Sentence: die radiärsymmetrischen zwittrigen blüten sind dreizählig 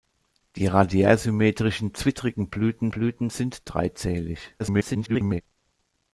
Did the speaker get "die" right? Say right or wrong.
right